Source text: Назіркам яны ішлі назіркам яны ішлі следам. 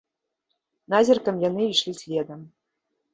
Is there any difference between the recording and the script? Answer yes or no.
yes